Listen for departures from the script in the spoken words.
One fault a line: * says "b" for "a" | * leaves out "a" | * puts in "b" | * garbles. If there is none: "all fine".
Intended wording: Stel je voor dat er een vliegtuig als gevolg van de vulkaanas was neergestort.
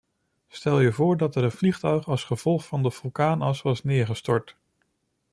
all fine